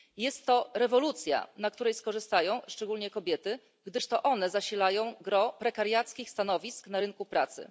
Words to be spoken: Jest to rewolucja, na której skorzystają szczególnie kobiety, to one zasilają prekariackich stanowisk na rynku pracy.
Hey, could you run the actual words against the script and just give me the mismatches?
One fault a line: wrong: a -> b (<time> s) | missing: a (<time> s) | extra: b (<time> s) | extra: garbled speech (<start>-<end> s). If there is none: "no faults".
extra: gdyż (3.9 s)
extra: gros (5.2 s)